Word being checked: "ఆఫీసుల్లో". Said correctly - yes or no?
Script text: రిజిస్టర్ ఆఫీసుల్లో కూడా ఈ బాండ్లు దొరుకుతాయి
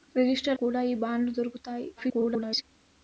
no